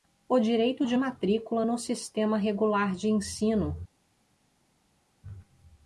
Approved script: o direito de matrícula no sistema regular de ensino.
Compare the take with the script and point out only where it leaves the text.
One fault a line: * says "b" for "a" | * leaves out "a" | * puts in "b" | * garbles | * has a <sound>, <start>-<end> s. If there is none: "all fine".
all fine